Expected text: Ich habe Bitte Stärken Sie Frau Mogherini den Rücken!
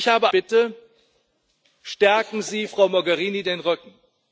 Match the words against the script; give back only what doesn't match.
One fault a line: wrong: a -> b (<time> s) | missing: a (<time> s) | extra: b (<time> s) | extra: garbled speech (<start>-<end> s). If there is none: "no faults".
no faults